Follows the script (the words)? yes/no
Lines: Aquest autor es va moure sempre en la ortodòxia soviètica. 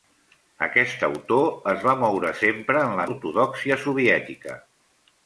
yes